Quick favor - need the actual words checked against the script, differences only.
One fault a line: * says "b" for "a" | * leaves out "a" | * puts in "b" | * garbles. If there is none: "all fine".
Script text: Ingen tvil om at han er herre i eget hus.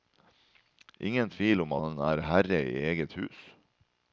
* leaves out "at"